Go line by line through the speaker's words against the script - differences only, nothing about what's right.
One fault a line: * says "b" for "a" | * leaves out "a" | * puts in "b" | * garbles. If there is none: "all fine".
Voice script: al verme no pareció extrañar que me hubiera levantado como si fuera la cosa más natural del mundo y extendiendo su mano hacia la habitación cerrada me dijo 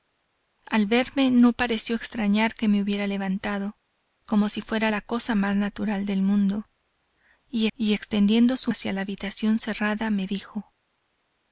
* puts in "y"
* leaves out "mano"